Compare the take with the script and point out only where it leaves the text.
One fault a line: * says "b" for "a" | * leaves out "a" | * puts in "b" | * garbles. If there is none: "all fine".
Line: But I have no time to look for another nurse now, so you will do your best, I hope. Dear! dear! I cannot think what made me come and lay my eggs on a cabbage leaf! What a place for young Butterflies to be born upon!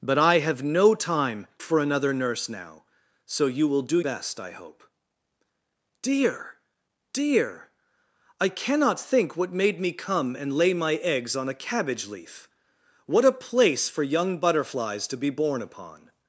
* leaves out "to look"
* leaves out "your"